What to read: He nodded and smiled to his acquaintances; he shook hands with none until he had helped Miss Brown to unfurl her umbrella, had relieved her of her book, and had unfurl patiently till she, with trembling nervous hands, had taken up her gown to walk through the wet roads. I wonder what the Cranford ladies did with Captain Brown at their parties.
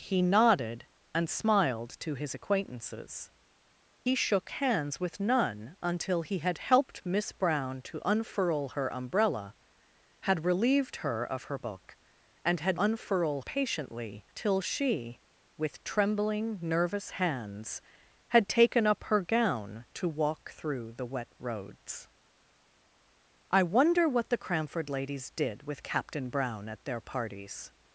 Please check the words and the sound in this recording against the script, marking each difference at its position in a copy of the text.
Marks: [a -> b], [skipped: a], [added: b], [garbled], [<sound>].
He nodded and smiled to his acquaintances; he shook hands with none until he had helped Miss Brown to unfurl her umbrella, had relieved her of her book, and had unfurl patiently till she, with trembling nervous hands, had taken up her gown to walk through the wet roads. I wonder what the Cranford ladies did with Captain Brown at their parties.